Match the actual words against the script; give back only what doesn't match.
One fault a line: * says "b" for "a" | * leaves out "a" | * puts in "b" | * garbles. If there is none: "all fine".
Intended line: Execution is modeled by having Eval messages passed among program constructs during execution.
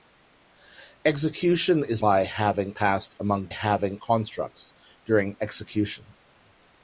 * leaves out "modeled"
* leaves out "Eval messages"
* says "having" for "program"